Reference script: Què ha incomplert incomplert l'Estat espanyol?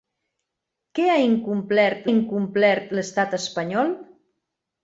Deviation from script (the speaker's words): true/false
false